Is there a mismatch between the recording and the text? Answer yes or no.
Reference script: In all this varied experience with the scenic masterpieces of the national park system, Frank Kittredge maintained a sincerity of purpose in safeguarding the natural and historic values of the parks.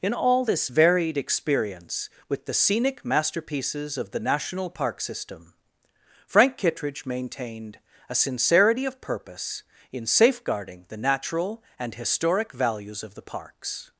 no